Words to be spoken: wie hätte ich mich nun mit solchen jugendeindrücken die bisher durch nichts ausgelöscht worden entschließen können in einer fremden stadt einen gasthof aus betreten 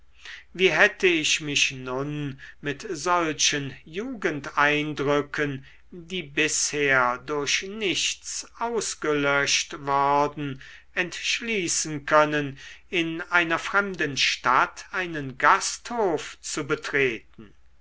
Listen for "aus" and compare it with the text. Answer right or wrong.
wrong